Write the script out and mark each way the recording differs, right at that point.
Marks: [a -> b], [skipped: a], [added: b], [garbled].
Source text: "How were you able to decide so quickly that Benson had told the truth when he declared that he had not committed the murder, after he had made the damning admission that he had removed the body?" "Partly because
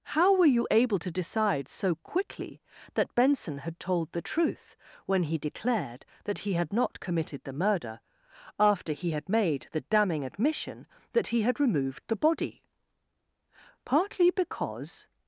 "How were you able to decide so quickly that Benson had told the truth when he declared that he had not committed the murder, after he had made the damning admission that he had removed the body?" "Partly because